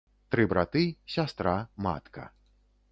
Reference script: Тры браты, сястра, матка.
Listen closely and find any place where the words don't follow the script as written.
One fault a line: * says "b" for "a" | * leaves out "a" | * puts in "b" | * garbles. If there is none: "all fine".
all fine